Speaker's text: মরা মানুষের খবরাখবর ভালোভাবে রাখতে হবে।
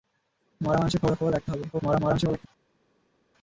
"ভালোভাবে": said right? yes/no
no